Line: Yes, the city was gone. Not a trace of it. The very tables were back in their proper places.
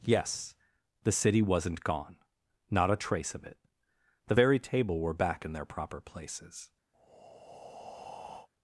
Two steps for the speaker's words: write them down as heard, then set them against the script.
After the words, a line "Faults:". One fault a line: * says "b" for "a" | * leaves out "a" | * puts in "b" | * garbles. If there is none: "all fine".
Yes, the city wasn't gone. Not a trace of it. The very table were back in their proper places.
Faults:
* says "wasn't" for "was"
* says "table" for "tables"